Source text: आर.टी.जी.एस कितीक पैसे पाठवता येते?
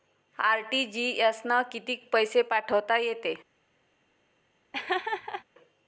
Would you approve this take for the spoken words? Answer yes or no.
no